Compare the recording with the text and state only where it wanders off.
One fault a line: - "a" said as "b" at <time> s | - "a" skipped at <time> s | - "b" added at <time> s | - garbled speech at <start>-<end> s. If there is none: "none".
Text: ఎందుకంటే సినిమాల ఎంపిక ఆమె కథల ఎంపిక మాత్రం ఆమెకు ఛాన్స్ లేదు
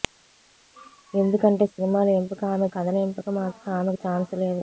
none